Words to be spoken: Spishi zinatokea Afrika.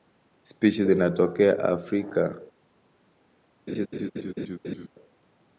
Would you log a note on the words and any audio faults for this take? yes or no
yes